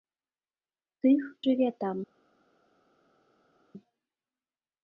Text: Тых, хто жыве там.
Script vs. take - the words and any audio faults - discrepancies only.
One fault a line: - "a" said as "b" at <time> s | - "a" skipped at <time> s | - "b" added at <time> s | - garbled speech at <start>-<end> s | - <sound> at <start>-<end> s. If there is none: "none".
- "хто" skipped at 1.2 s